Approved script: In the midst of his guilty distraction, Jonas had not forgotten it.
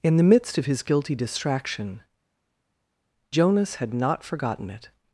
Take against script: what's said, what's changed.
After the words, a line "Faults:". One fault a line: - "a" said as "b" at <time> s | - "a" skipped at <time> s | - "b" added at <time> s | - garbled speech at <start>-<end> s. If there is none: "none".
In the midst of his guilty distraction, Jonas had not forgotten it.
Faults:
none